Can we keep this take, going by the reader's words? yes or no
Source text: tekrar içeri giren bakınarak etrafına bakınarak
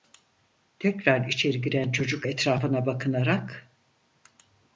no